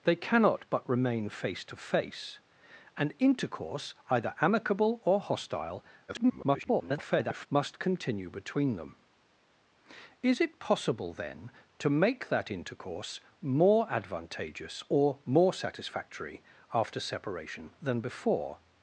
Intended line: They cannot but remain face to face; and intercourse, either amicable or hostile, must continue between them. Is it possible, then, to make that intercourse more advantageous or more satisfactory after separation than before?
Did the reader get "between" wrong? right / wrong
right